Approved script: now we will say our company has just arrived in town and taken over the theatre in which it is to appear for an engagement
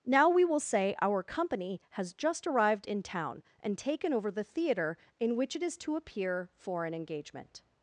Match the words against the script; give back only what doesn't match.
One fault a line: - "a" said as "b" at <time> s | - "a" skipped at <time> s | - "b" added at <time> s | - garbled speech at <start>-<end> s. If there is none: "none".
none